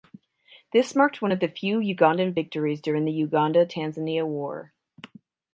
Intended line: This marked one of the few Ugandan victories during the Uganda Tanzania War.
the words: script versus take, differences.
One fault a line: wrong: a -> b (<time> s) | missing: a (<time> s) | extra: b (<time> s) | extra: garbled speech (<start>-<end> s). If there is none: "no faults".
no faults